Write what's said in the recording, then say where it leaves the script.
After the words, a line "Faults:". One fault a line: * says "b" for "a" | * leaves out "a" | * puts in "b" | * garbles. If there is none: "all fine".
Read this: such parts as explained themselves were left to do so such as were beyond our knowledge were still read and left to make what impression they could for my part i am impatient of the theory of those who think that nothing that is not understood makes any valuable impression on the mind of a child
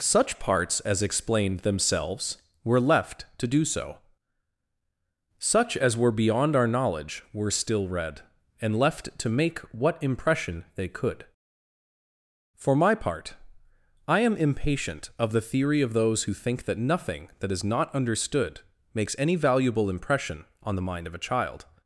such parts as explained themselves were left to do so such as were beyond our knowledge were still read and left to make what impression they could for my part i am impatient of the theory of those who think that nothing that is not understood makes any valuable impression on the mind of a child
Faults:
all fine